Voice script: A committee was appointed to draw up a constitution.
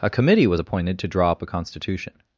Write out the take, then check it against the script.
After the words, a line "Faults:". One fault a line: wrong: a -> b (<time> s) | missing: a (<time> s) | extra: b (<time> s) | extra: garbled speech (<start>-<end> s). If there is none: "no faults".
A committee was appointed to draw up a constitution.
Faults:
no faults